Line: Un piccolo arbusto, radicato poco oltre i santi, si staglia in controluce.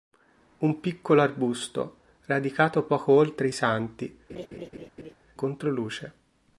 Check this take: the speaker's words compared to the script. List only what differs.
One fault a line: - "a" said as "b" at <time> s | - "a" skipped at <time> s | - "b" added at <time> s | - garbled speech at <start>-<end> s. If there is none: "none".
- "si staglia in" skipped at 4.2 s